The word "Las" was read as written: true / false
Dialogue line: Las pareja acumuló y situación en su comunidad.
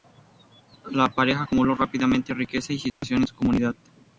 false